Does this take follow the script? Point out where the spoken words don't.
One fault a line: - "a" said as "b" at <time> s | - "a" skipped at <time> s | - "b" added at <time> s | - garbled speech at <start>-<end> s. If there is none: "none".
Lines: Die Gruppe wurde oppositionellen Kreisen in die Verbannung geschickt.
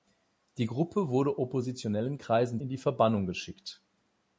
none